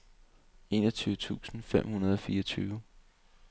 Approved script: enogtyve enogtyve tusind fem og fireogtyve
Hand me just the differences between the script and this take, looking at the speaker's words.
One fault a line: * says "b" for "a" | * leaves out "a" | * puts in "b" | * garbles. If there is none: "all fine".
* leaves out "enogtyve"
* puts in "hundrede"